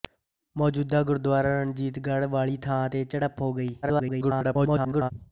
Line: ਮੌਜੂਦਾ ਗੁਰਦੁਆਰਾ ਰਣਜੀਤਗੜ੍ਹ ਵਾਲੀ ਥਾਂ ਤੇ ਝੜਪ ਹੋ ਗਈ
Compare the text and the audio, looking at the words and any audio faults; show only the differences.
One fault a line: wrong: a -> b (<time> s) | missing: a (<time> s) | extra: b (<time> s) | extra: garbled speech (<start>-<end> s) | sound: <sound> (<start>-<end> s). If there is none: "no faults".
extra: garbled speech (3.8-5.1 s)